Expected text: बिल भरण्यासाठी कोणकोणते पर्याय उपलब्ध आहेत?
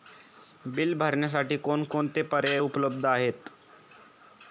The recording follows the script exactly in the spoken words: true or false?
true